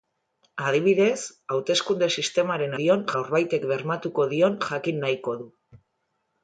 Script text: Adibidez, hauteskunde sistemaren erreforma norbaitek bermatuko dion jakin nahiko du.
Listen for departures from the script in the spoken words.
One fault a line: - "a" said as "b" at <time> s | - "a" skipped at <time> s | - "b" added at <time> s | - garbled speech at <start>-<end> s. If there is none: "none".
- "erreforma" said as "dion" at 2.8 s